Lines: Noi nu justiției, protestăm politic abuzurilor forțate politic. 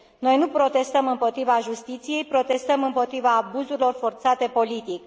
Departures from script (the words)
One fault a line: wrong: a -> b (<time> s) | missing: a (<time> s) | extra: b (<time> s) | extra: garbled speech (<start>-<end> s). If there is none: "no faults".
extra: protestăm împotriva (0.5 s)
wrong: politic -> împotriva (2.8 s)